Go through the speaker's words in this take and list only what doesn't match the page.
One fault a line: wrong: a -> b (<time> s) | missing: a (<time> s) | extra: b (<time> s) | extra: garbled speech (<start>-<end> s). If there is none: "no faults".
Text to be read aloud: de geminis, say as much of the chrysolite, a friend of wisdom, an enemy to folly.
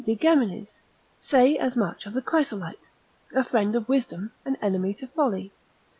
no faults